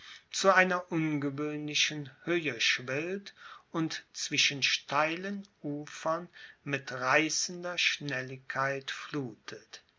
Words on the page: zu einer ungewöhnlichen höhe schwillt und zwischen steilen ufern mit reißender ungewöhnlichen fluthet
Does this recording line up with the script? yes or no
no